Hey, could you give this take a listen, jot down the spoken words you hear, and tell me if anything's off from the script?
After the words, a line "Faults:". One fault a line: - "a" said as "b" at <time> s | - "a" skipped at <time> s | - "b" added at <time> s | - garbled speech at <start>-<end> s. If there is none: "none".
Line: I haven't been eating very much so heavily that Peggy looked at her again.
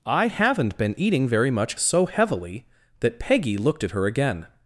I haven't been eating very much so heavily that Peggy looked at her again.
Faults:
none